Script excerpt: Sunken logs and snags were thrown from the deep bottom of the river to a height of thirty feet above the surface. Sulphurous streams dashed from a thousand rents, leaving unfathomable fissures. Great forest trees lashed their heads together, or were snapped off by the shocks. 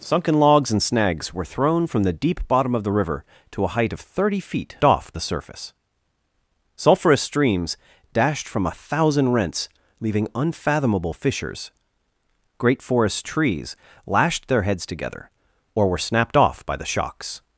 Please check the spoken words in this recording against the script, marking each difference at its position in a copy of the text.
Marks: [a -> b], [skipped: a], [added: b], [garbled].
Sunken logs and snags were thrown from the deep bottom of the river to a height of thirty feet [above -> off] the surface. Sulphurous streams dashed from a thousand rents, leaving unfathomable fissures. Great forest trees lashed their heads together, or were snapped off by the shocks.